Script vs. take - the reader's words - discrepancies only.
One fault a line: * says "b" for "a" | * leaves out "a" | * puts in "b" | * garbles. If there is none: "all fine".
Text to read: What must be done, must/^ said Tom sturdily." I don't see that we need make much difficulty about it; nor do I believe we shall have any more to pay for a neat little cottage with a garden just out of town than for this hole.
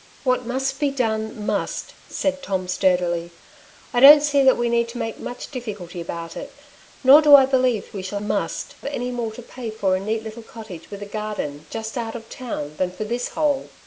* says "must" for "have"